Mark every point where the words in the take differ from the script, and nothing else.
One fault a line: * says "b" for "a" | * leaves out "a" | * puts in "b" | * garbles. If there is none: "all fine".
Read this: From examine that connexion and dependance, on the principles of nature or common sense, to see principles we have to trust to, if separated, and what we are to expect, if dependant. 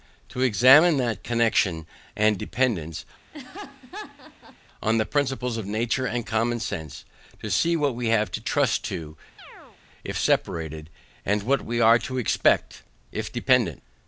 * says "To" for "From"
* says "and" for "or"
* says "what" for "principles"